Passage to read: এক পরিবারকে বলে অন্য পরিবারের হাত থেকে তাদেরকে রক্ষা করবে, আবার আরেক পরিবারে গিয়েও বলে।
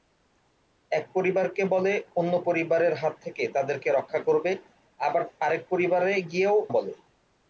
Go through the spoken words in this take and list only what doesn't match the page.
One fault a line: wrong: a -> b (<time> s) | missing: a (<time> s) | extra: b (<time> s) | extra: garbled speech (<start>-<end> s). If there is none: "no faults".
no faults